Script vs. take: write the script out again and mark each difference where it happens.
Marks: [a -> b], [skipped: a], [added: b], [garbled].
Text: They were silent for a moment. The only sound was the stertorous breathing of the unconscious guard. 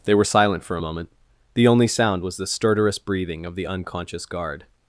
They were silent for a moment. The only sound was the stertorous breathing of the unconscious guard.